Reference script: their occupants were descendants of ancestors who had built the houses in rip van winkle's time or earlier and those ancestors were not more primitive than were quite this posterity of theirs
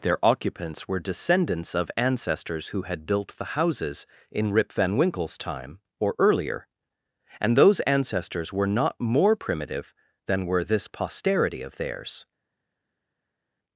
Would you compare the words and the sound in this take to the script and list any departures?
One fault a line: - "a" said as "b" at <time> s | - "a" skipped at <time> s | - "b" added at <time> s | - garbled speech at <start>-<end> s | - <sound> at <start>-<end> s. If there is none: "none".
- "quite" skipped at 10.6 s